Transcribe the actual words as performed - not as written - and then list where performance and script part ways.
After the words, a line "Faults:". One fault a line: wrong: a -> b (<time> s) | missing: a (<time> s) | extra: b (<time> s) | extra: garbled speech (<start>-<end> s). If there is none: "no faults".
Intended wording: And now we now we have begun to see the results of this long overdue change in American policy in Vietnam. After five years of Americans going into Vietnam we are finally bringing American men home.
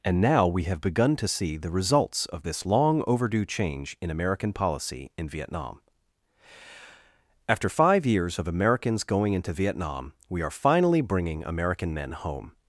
And now we have begun to see the results of this long overdue change in American policy in Vietnam. After five years of Americans going into Vietnam we are finally bringing American men home.
Faults:
missing: now we (0.6 s)